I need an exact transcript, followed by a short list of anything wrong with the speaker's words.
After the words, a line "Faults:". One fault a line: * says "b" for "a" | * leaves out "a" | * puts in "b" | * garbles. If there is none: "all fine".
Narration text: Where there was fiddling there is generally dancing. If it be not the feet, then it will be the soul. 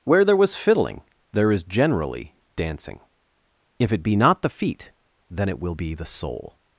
Where there was fiddling there is generally dancing. If it be not the feet, then it will be the soul.
Faults:
all fine